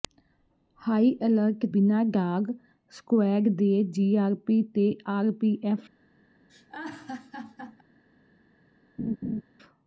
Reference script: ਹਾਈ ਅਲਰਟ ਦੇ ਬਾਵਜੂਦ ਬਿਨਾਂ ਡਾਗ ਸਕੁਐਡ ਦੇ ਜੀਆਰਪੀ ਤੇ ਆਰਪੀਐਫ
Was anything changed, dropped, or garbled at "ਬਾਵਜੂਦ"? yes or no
yes